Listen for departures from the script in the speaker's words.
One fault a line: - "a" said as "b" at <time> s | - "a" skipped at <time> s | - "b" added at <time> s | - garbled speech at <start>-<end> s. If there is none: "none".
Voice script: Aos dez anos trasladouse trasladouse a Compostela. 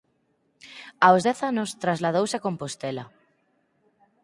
- "trasladouse" skipped at 2.4 s